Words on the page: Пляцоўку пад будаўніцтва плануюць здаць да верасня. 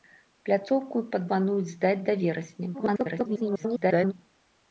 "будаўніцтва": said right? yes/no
no